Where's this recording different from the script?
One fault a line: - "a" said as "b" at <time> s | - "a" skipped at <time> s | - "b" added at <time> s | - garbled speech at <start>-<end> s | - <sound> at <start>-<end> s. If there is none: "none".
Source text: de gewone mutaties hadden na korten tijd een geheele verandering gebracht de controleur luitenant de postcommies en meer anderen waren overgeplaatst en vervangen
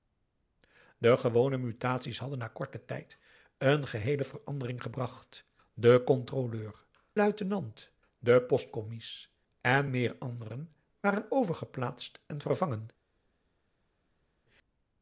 none